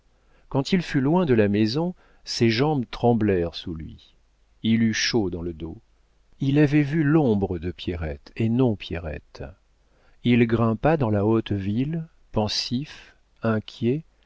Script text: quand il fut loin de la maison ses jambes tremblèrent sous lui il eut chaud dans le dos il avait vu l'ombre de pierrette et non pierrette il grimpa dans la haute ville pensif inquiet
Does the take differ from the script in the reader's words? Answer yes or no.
no